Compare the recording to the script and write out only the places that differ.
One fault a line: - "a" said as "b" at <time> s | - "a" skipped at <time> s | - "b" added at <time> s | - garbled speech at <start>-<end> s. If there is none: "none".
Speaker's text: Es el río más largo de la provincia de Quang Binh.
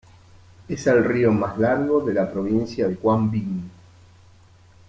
none